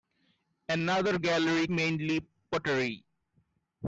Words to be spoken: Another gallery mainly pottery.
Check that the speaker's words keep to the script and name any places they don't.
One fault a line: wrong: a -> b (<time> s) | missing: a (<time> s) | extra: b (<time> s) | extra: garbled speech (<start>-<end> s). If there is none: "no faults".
no faults